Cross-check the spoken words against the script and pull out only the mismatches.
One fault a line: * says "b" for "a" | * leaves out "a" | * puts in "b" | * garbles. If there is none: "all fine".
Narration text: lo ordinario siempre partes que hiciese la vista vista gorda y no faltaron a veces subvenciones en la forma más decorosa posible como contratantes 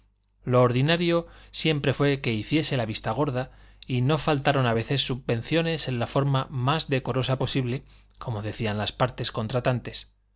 * says "fue" for "partes"
* leaves out "vista"
* puts in "decían las partes"